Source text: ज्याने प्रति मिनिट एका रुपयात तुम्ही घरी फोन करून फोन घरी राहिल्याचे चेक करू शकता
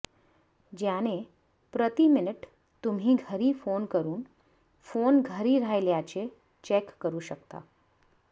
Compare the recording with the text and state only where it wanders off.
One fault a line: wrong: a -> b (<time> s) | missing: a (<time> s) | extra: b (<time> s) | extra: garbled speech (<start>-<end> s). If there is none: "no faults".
missing: एका रुपयात (2.5 s)